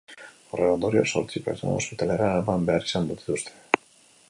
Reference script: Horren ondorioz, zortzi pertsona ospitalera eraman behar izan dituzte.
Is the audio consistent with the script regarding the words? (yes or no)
yes